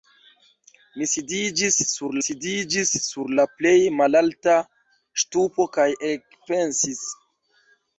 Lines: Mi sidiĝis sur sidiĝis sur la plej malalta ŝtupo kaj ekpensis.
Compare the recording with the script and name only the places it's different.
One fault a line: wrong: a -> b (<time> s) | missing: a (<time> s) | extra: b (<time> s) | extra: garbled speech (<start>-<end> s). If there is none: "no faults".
no faults